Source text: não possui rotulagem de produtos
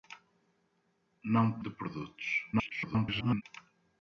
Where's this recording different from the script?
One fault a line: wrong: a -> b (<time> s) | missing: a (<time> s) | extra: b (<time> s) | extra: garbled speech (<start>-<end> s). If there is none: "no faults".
missing: possui rotulagem (1.6 s)
extra: garbled speech (2.5-3.4 s)